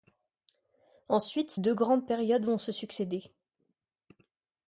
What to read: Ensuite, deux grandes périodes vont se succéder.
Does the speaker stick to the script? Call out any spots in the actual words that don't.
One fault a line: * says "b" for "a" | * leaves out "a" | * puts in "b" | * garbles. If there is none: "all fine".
all fine